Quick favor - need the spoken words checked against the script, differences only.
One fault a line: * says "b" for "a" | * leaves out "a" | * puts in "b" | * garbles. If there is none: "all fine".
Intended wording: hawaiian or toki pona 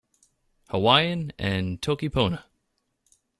* says "and" for "or"